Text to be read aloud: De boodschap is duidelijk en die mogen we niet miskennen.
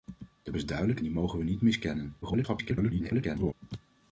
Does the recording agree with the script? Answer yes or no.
no